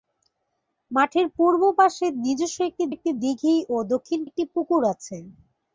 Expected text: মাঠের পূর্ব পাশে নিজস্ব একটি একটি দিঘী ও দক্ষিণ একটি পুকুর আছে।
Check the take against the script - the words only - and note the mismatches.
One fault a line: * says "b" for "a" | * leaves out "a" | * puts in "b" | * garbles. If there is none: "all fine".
all fine